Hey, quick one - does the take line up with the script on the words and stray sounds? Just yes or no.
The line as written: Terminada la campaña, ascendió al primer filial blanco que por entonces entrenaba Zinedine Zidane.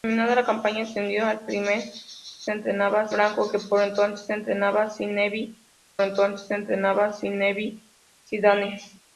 no